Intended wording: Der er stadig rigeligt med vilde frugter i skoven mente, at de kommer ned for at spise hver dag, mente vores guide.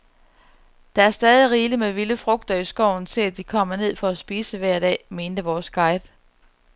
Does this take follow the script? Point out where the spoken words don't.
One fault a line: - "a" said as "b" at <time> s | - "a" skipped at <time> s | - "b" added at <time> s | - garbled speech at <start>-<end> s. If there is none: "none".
- "mente" said as "til" at 3.0 s